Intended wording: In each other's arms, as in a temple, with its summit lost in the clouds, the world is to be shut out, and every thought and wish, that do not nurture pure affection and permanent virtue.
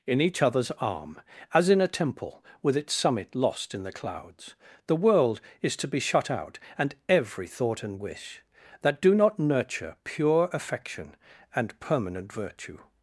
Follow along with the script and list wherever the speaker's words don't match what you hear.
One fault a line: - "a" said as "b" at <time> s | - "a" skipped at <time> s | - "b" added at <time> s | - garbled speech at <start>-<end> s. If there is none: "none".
- "arms" said as "arm" at 0.7 s